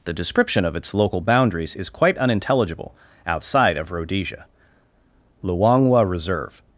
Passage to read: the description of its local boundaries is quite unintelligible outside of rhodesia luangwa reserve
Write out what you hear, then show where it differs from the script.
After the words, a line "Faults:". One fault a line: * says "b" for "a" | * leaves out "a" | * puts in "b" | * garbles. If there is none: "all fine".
the description of its local boundaries is quite unintelligible outside of rhodesia luangwa reserve
Faults:
all fine